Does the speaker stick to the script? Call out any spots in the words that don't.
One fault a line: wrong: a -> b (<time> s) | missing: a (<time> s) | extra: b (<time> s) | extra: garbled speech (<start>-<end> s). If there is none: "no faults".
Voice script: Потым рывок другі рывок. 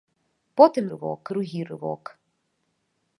no faults